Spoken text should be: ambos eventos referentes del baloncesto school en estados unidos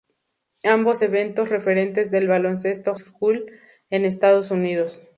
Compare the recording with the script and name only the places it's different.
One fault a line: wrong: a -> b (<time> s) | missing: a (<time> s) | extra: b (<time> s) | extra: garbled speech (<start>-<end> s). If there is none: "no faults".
no faults